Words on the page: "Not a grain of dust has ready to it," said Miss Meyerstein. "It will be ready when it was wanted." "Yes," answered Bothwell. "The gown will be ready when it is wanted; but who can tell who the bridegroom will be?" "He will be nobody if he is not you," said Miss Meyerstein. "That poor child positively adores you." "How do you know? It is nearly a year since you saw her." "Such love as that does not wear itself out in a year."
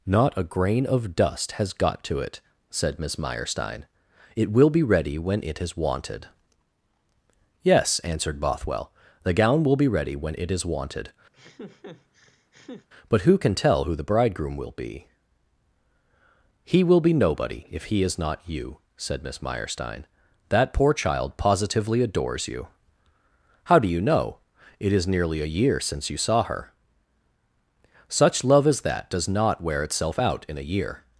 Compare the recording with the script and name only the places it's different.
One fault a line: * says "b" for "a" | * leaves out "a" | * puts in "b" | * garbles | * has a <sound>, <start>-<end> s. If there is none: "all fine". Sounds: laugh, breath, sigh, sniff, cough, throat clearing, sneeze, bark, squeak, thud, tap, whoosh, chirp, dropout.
* says "got" for "ready"
* says "is" for "was"
* has a laugh, 11.3-12.9 s